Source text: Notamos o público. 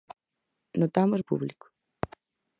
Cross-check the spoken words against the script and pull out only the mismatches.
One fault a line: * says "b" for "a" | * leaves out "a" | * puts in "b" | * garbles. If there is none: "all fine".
all fine